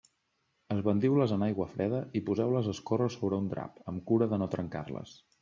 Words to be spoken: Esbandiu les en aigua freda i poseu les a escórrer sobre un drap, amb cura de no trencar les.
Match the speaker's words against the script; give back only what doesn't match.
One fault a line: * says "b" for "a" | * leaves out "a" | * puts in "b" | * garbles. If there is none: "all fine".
all fine